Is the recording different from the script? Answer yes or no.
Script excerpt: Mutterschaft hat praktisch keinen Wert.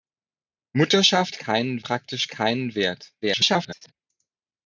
yes